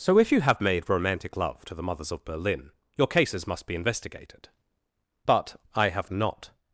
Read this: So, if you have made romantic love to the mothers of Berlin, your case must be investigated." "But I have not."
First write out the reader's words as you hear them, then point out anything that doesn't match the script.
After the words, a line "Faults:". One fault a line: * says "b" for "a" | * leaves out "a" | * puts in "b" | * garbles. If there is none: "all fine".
So, if you have made romantic love to the mothers of Berlin, your cases must be investigated." "But I have not."
Faults:
* says "cases" for "case"